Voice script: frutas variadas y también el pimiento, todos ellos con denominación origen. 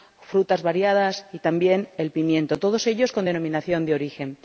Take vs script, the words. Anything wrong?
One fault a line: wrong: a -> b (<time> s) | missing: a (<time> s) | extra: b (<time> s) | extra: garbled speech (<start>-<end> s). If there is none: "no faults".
extra: de (3.8 s)